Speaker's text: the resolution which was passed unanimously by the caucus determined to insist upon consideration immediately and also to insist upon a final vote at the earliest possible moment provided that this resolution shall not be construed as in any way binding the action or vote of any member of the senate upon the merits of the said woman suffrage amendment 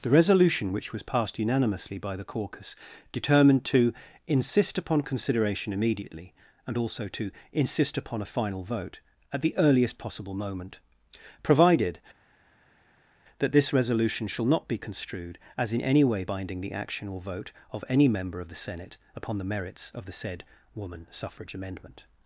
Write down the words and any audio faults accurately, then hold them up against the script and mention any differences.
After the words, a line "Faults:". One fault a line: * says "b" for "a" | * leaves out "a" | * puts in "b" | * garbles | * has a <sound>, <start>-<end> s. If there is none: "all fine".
the resolution which was passed unanimously by the caucus determined to insist upon consideration immediately and also to insist upon a final vote at the earliest possible moment provided that this resolution shall not be construed as in any way binding the action or vote of any member of the senate upon the merits of the said woman suffrage amendment
Faults:
all fine